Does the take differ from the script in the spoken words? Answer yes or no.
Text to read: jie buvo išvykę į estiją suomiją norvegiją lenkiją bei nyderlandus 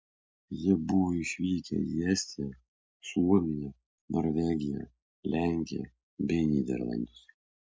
no